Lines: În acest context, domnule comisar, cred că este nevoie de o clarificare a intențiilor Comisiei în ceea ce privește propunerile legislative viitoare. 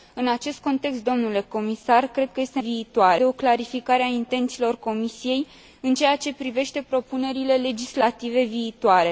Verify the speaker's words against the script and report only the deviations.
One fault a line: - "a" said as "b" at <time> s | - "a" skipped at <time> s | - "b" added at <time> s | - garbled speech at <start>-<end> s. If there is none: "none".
- "nevoie" said as "viitoare" at 2.6 s